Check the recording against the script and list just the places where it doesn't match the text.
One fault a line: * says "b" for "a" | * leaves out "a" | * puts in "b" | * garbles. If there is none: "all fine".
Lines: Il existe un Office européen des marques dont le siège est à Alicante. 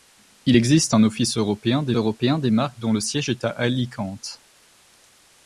* puts in "européen des"